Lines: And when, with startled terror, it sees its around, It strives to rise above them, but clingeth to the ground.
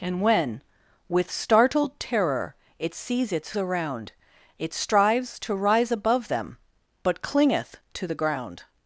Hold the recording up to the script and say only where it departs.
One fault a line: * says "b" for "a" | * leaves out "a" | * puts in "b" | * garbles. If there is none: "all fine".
all fine